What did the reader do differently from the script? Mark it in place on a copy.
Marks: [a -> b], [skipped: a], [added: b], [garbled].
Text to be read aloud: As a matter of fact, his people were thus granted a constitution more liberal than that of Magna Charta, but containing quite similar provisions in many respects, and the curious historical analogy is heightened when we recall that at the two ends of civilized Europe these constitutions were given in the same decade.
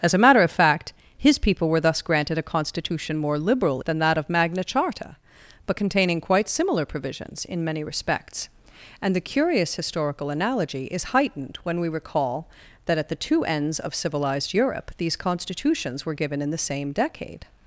As a matter of fact, his people were thus granted a constitution more liberal than that of Magna Charta, but containing quite similar provisions in many respects, and the curious historical analogy is heightened when we recall that at the two ends of civilized Europe these constitutions were given in the same decade.